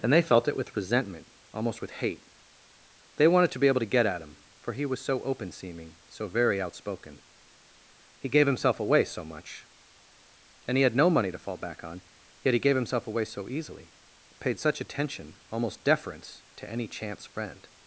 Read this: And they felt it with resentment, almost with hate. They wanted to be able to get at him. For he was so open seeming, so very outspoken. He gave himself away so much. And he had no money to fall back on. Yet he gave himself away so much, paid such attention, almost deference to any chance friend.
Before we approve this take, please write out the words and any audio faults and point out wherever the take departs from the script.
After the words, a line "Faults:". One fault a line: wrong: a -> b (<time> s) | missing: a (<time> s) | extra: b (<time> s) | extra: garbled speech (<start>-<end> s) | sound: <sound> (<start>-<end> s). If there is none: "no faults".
And they felt it with resentment, almost with hate. They wanted to be able to get at him. For he was so open seeming, so very outspoken. He gave himself away so much. And he had no money to fall back on. Yet he gave himself away so easily, paid such attention, almost deference to any chance friend.
Faults:
wrong: much -> easily (13.5 s)